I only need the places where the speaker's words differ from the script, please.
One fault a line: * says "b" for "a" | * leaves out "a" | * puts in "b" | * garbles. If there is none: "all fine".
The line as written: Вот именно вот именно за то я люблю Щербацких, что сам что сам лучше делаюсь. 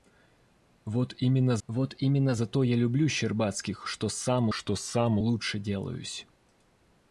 all fine